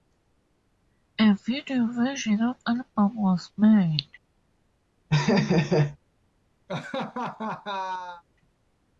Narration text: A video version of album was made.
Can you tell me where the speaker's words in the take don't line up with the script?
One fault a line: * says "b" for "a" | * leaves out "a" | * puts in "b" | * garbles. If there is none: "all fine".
all fine